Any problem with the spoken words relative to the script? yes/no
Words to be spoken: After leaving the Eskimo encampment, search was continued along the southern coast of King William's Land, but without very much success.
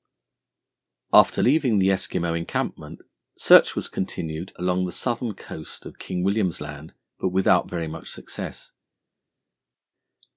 no